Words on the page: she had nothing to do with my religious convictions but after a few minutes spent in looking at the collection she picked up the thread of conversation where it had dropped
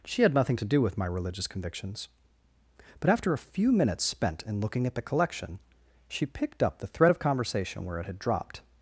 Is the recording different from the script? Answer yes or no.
no